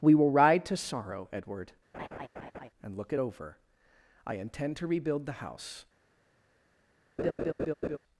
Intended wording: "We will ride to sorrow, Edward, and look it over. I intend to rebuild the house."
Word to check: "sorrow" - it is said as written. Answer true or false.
true